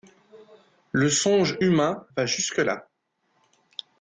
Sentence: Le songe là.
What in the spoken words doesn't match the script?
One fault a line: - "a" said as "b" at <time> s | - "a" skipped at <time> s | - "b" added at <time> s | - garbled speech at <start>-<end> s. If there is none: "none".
- "humain va jusque" added at 1.6 s